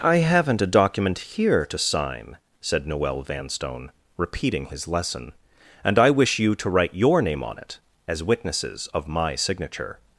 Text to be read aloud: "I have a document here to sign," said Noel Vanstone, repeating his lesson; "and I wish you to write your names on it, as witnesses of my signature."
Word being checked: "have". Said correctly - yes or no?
no